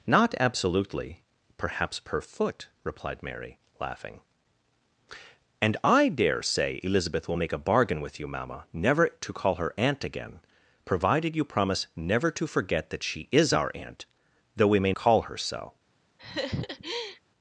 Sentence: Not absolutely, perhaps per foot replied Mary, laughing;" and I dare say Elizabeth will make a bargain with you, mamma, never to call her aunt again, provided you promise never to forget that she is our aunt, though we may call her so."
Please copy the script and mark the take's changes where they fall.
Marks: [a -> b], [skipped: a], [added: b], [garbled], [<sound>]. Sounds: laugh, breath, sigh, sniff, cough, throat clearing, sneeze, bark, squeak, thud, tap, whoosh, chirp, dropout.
Not absolutely, perhaps per foot replied Mary, laughing;" and I dare say Elizabeth will make a bargain with you, mamma, never to call her aunt again, provided you promise never to forget that she is our aunt, though we may call her so." [laugh]